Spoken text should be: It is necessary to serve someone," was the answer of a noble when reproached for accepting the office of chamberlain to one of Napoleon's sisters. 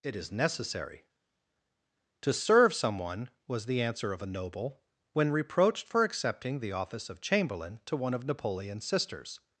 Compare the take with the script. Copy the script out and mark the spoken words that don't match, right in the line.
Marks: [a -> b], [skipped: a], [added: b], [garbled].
It is necessary to serve someone," was the answer of a noble when reproached for accepting the office of chamberlain to one of Napoleon's sisters.